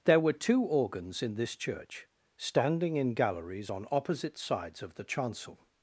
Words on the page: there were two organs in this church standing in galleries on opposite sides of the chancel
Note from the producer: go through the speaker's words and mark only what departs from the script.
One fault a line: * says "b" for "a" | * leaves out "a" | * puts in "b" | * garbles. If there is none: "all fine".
all fine